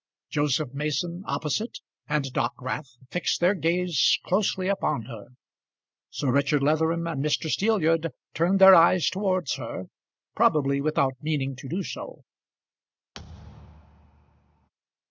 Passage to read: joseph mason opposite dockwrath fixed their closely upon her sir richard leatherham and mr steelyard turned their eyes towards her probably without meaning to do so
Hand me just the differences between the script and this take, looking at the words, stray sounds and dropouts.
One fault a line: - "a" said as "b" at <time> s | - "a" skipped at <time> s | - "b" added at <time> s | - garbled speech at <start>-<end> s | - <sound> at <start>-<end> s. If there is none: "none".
- "and" added at 2.1 s
- "gaze" added at 3.5 s
- thud at 13.1-14.7 s